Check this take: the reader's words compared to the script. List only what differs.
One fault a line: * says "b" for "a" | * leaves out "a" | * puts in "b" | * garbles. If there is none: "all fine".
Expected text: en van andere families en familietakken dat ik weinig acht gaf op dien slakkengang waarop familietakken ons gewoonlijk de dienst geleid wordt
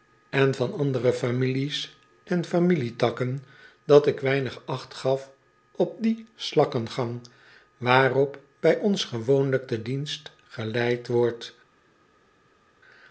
* says "bij" for "familietakken"